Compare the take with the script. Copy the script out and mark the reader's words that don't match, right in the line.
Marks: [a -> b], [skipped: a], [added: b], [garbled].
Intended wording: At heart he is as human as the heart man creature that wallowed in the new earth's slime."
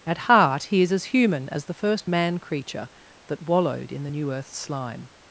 At heart he is as human as the [heart -> first] man creature that wallowed in the new earth's slime."